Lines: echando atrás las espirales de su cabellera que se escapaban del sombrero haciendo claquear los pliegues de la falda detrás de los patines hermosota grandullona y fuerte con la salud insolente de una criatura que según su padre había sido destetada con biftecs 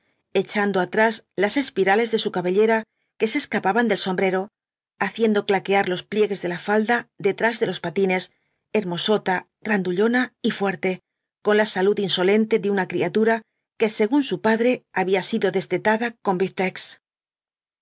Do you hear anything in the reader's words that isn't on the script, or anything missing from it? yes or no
no